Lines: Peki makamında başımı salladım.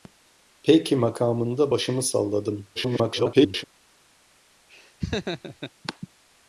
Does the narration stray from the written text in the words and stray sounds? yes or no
yes